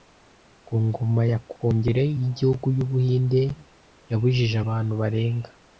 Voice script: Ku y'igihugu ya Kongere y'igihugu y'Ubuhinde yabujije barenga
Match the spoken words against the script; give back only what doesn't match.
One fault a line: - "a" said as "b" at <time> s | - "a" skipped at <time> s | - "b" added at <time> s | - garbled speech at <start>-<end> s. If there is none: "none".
- "y'igihugu" said as "ngoma" at 0.8 s
- "abantu" added at 4.6 s